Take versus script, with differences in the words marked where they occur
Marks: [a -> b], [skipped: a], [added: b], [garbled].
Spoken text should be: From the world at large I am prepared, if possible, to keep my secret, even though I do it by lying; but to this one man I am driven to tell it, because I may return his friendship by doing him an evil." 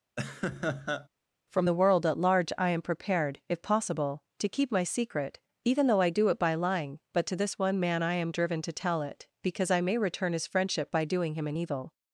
From the world at large I am prepared, if possible, to keep my secret, even though I do it by lying; but to this one man I am driven to tell it, because I may return his friendship by doing him an evil."